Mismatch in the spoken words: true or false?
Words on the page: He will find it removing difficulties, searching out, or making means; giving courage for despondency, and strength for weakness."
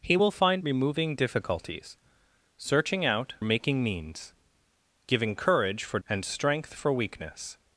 true